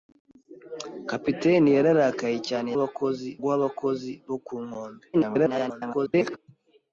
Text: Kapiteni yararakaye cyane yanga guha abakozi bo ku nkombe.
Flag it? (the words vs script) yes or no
yes